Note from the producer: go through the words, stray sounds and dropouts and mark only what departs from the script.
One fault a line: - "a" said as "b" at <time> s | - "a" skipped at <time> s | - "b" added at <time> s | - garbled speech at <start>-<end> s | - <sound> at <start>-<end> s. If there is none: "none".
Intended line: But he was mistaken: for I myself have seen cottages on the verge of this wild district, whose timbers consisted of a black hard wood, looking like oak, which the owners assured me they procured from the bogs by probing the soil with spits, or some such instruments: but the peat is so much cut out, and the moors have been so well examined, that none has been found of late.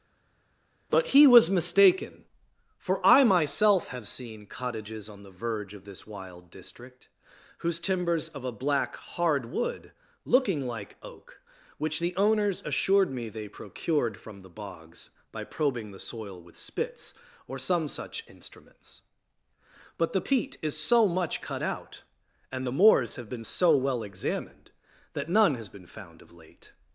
- "consisted" skipped at 8.3 s